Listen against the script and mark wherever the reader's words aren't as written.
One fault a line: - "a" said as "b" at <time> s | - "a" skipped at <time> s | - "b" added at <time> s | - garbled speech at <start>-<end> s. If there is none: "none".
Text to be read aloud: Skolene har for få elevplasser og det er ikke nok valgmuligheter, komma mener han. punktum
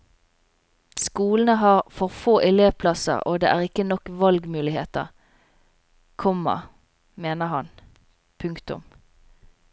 none